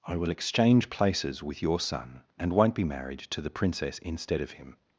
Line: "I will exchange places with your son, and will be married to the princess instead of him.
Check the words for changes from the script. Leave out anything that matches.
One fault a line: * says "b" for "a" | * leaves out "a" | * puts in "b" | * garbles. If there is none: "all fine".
* says "won't" for "will"